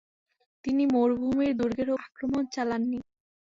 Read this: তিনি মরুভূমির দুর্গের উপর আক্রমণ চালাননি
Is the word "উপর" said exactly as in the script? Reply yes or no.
no